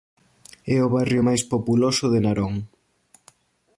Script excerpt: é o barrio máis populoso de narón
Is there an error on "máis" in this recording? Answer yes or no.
no